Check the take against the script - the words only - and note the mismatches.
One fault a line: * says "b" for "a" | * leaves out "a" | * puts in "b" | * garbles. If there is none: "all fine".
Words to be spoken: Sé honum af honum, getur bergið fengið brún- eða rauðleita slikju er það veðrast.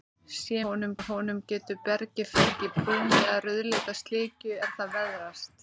all fine